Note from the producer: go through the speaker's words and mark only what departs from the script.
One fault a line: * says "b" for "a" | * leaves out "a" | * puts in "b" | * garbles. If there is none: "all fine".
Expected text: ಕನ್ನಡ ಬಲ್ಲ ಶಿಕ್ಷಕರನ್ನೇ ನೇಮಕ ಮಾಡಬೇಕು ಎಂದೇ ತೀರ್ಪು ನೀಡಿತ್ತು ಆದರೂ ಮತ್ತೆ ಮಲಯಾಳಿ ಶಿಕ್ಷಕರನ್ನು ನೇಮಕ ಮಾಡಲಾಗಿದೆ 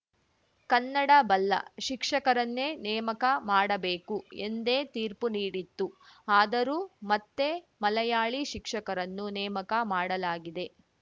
all fine